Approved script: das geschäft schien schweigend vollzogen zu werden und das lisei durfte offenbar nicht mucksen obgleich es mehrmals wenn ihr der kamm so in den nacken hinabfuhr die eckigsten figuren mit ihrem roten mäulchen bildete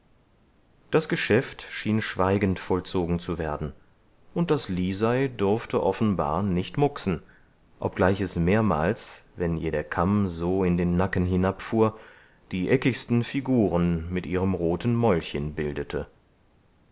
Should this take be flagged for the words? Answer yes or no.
no